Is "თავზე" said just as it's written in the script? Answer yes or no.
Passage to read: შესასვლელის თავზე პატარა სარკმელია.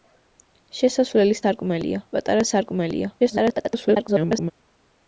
no